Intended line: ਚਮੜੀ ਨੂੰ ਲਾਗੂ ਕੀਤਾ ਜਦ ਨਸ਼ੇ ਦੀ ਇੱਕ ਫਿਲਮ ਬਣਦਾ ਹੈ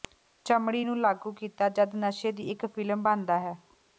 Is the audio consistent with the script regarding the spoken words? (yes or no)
yes